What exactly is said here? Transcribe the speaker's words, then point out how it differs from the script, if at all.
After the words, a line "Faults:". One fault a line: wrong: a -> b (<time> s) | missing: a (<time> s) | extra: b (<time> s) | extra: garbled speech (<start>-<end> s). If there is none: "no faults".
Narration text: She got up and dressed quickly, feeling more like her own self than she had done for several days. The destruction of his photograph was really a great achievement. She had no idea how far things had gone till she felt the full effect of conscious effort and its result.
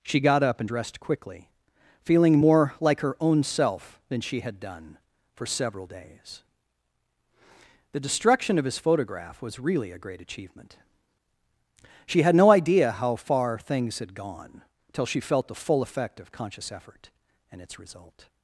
She got up and dressed quickly, feeling more like her own self than she had done for several days. The destruction of his photograph was really a great achievement. She had no idea how far things had gone till she felt the full effect of conscious effort and its result.
Faults:
no faults